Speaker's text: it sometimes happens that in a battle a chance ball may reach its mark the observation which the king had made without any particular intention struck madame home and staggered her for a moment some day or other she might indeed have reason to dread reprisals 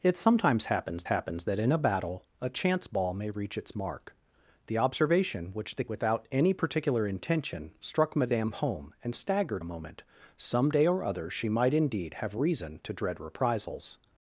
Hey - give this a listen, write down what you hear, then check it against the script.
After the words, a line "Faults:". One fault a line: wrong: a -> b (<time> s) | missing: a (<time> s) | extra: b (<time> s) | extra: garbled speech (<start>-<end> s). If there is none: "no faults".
it sometimes happens happens that in a battle a chance ball may reach its mark the observation which the without any particular intention struck madame home and staggered a moment some day or other she might indeed have reason to dread reprisals
Faults:
extra: happens (1.0 s)
missing: king had made (5.8 s)
missing: her for (9.6 s)